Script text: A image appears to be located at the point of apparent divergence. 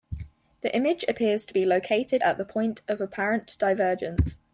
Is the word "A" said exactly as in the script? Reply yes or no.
no